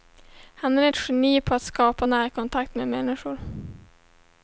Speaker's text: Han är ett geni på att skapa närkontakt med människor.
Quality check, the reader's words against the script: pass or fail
pass